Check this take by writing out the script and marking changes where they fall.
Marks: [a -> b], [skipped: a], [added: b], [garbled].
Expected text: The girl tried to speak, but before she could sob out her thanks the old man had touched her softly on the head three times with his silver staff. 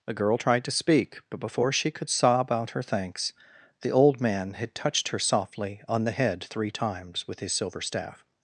The girl tried to speak, but before she could sob out her thanks the old man had touched her softly on the head three times with his silver staff.